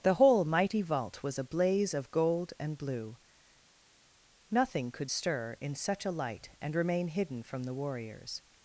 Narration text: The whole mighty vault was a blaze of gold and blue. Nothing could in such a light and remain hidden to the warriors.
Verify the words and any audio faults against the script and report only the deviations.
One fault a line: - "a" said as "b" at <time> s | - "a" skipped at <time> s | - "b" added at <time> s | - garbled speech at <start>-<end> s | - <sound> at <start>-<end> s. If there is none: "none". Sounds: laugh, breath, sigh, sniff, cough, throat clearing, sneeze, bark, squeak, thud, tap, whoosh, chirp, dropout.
- "stir" added at 5.1 s
- "to" said as "from" at 7.4 s